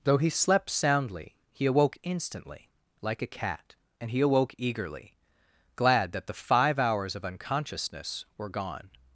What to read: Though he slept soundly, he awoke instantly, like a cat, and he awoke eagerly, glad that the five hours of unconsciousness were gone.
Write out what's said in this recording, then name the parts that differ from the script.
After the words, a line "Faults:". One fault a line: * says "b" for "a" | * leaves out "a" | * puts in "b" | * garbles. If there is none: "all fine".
Though he slept soundly, he awoke instantly, like a cat, and he awoke eagerly, glad that the five hours of unconsciousness were gone.
Faults:
all fine